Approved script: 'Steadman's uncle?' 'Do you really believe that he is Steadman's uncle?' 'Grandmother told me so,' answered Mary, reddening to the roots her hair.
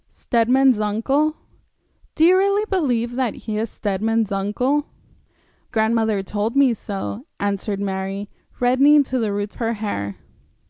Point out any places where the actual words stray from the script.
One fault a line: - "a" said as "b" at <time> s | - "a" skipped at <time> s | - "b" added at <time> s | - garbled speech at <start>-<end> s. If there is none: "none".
none